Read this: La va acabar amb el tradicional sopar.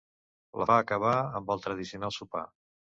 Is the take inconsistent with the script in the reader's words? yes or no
no